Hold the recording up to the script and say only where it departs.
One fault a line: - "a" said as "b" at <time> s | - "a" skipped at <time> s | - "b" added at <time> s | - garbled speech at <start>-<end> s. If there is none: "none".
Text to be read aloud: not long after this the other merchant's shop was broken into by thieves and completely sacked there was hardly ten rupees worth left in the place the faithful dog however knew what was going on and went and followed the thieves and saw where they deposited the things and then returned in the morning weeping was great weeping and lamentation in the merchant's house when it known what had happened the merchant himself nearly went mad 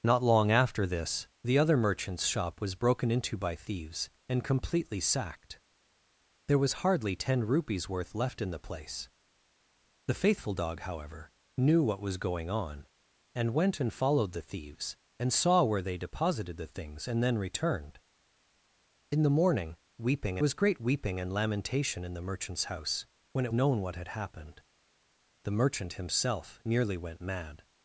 none